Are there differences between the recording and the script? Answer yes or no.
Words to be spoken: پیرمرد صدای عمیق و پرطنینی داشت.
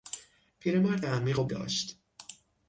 yes